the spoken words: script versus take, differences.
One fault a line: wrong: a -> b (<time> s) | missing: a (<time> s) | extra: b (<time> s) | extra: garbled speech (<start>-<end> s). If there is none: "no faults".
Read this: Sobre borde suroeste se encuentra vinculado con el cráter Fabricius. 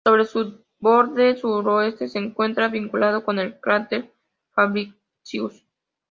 extra: su (0.2 s)